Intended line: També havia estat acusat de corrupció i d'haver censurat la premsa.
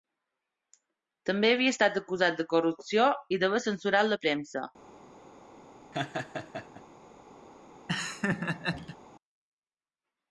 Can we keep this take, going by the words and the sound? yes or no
no